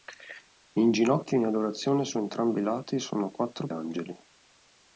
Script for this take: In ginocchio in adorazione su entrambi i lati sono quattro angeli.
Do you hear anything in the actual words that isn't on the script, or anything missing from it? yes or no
no